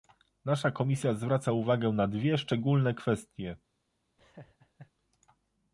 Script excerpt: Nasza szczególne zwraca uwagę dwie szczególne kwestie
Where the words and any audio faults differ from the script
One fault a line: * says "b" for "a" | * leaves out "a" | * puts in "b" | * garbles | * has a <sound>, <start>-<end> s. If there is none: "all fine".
* says "komisja" for "szczególne"
* puts in "na"
* has a laugh, 4.2-4.9 s